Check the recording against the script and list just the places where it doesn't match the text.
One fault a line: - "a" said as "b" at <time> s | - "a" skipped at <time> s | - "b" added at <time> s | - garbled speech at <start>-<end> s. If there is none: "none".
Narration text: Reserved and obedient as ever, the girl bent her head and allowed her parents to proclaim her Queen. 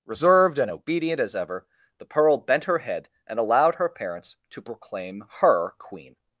- "girl" said as "pearl" at 2.1 s